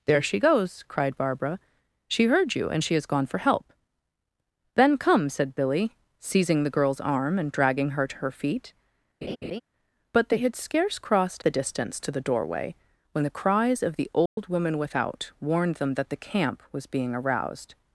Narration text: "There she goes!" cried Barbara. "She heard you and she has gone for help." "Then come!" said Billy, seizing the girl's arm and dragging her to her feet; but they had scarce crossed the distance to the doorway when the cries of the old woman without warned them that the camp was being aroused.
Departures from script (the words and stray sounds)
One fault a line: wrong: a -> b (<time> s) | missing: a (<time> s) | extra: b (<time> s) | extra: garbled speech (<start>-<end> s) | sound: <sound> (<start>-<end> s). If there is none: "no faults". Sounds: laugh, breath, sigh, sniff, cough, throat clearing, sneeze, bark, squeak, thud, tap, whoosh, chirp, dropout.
sound: laugh (9.2-9.6 s)
sound: dropout (14.3-14.4 s)